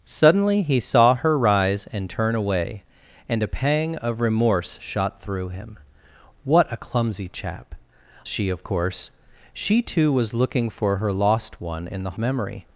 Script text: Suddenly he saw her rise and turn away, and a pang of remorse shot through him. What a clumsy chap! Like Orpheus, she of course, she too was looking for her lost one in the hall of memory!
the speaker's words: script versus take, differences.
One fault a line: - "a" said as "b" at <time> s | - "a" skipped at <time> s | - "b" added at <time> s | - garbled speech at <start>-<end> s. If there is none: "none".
- "Like Orpheus" skipped at 7.7 s
- "hall of" skipped at 12.2 s